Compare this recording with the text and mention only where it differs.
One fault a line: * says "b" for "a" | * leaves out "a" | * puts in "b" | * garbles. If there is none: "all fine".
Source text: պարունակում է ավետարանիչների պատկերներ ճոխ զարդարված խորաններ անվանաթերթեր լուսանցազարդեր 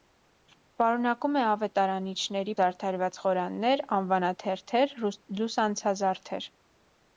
* leaves out "պատկերներ ճոխ"